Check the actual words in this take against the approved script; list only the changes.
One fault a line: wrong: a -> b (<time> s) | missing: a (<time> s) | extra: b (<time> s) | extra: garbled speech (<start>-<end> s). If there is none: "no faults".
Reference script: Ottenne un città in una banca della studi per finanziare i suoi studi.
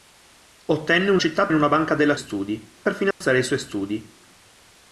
no faults